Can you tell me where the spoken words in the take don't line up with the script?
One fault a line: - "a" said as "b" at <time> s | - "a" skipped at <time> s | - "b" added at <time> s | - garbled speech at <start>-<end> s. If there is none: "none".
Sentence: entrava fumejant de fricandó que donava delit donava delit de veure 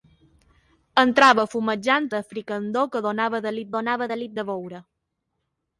none